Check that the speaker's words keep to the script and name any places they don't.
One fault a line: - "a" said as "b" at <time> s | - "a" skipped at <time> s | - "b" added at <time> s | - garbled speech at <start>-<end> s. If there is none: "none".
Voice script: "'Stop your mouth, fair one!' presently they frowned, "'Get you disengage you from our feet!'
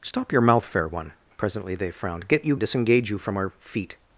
none